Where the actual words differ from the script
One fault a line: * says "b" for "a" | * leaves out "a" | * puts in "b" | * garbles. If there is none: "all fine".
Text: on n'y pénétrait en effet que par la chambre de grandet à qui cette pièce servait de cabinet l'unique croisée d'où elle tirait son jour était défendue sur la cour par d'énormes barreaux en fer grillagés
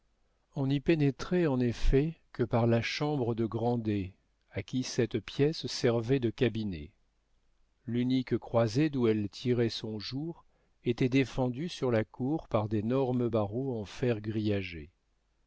all fine